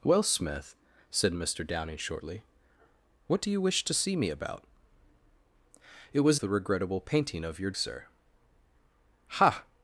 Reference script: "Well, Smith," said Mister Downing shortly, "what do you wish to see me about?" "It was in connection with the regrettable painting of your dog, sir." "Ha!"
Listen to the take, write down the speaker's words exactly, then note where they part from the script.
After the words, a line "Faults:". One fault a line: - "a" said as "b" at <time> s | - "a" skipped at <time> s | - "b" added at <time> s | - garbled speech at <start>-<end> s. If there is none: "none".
"Well, Smith," said Mister Downing shortly, "what do you wish to see me about?" "It was the regrettable painting of your sir." "Ha!"
Faults:
- "in connection with" skipped at 6.4 s
- "dog" skipped at 7.7 s